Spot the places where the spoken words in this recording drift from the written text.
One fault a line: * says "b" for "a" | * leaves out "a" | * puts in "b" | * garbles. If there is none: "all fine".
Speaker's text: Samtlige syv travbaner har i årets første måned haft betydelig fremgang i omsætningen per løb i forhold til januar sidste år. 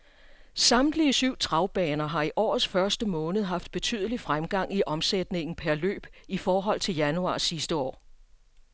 all fine